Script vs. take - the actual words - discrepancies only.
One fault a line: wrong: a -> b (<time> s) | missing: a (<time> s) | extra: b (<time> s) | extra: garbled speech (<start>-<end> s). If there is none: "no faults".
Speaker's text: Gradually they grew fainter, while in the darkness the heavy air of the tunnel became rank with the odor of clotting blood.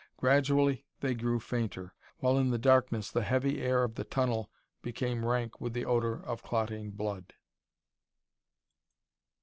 no faults